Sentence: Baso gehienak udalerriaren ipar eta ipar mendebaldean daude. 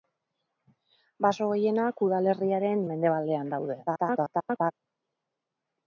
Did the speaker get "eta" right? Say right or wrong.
wrong